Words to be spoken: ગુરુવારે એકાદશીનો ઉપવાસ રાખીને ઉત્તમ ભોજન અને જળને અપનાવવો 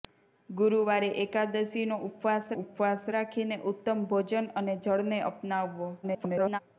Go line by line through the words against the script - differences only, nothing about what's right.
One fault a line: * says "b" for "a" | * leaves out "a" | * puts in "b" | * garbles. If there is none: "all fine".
* puts in "ઉપવાસ"
* garbles